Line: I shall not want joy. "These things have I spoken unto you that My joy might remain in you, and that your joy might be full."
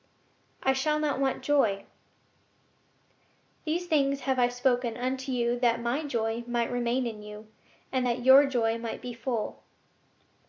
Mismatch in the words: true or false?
false